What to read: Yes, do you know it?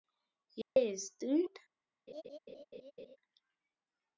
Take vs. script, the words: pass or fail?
fail